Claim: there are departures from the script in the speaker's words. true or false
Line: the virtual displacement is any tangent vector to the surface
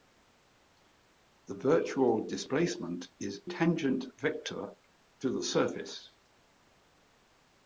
true